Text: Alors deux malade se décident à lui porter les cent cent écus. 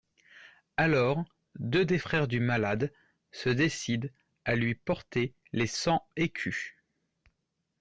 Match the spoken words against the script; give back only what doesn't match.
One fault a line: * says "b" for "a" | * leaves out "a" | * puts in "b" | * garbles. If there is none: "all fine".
* puts in "des frères du"
* leaves out "cent"